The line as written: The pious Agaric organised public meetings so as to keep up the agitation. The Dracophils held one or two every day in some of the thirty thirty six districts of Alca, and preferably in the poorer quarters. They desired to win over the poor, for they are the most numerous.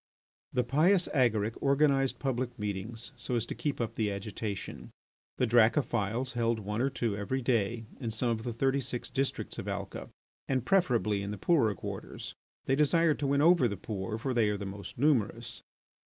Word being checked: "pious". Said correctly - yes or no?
yes